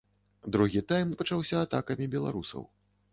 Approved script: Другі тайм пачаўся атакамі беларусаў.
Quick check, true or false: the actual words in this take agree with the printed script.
true